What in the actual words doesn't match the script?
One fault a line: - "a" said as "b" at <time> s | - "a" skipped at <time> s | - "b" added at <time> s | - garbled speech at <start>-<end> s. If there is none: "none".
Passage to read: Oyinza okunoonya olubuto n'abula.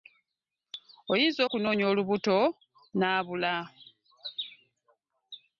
none